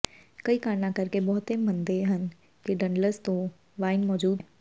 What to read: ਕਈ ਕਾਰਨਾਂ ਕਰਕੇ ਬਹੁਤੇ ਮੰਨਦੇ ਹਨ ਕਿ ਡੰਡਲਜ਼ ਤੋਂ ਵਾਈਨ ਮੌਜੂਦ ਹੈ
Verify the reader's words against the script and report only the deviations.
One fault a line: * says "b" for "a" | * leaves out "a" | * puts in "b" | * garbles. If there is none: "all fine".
all fine